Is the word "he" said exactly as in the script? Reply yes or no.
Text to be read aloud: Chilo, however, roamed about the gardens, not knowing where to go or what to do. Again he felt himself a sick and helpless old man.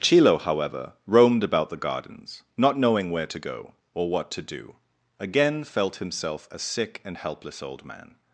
no